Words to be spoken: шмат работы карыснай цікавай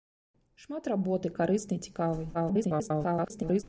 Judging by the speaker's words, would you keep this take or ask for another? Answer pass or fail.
fail